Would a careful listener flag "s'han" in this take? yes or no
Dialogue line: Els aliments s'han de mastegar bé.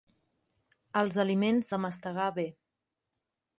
yes